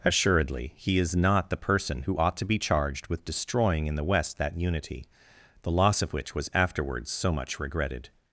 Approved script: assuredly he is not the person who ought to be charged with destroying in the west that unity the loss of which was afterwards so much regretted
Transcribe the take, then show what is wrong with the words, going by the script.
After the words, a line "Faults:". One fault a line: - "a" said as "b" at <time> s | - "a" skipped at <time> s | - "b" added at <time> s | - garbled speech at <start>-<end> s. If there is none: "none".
assuredly he is not the person who ought to be charged with destroying in the west that unity the loss of which was afterwards so much regretted
Faults:
none